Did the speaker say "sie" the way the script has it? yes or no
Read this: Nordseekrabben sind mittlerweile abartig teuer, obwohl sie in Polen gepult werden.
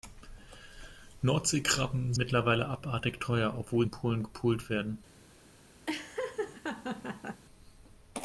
no